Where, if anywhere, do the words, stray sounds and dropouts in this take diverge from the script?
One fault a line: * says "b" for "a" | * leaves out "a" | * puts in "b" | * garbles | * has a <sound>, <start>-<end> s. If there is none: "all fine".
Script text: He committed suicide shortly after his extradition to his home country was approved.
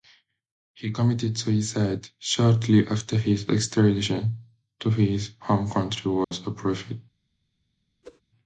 * has a dropout, 6.2-6.3 s
* has a whoosh, 8.0-8.2 s